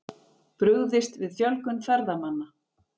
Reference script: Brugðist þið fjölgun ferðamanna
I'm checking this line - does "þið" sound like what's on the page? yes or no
no